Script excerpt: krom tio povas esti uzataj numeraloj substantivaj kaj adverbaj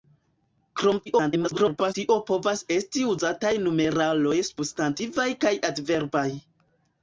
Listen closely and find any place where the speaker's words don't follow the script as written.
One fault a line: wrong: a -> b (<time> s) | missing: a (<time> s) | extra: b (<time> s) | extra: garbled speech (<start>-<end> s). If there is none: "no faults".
extra: garbled speech (1.1-1.9 s)